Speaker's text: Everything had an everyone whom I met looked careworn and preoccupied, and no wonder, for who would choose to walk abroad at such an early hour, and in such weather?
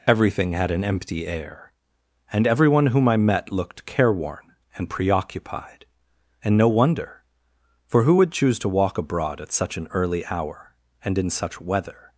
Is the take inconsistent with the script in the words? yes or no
yes